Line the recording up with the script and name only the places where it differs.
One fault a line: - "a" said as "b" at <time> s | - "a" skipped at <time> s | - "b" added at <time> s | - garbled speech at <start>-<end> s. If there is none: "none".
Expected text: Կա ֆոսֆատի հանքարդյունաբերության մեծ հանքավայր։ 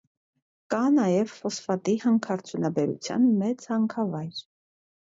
- "նաև" added at 0.9 s